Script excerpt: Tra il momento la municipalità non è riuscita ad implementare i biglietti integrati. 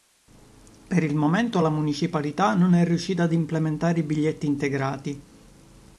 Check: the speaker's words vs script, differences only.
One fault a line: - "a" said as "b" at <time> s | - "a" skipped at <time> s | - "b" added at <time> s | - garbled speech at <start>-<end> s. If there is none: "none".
- "Tra" said as "Per" at 0.9 s